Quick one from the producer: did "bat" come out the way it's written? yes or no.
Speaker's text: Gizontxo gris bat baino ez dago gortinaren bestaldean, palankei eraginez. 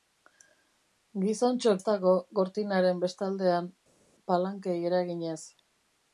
no